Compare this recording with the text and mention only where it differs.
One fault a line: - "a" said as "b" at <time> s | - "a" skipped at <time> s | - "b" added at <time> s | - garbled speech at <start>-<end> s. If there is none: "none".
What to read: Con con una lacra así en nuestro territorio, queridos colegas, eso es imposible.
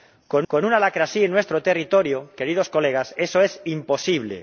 none